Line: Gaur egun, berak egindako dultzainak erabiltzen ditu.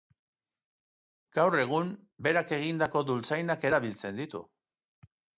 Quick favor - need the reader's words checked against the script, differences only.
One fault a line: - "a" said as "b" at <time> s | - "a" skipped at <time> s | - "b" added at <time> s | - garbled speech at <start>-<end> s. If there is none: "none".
none